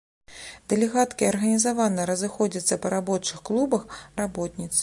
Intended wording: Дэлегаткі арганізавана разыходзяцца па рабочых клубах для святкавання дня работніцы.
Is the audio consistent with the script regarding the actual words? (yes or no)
no